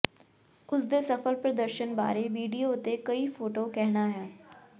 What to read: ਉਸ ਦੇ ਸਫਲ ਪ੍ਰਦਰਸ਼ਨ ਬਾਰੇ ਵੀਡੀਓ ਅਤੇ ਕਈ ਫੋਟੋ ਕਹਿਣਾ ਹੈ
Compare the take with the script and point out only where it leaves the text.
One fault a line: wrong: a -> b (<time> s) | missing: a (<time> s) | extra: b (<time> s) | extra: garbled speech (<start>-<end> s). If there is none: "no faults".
no faults